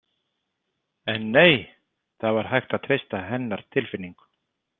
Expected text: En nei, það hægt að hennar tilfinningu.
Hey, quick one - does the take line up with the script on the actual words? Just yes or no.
no